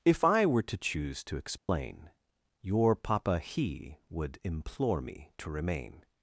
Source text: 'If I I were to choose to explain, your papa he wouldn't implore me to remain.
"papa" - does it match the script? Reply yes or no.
yes